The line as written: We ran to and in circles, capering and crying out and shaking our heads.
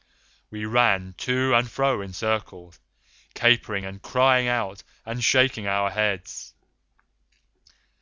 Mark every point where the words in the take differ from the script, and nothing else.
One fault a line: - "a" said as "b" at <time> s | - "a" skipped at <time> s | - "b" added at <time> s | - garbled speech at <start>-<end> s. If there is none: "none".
- "fro" added at 1.7 s